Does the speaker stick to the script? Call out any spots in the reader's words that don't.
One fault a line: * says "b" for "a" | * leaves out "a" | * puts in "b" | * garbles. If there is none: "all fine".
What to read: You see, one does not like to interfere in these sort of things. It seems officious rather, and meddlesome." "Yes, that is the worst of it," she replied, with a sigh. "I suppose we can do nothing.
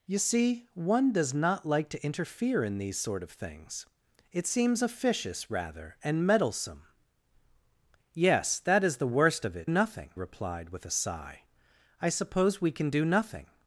* says "nothing" for "she"